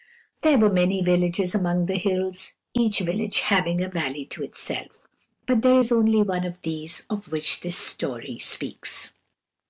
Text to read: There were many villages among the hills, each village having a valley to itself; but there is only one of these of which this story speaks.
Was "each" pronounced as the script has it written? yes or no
yes